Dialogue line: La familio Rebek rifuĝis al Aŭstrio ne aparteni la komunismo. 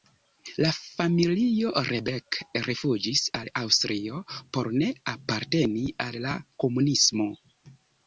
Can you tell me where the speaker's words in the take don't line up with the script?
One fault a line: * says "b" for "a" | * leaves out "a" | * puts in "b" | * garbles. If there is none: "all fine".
* puts in "por"
* puts in "al"